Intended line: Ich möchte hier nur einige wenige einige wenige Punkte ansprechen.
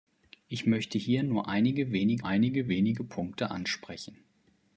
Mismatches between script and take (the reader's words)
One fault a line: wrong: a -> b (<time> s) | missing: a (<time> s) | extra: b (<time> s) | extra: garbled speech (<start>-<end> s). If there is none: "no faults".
no faults